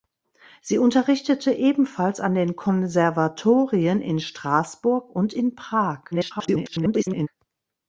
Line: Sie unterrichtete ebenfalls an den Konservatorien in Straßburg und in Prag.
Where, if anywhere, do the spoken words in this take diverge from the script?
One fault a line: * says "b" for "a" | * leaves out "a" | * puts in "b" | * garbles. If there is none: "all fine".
* garbles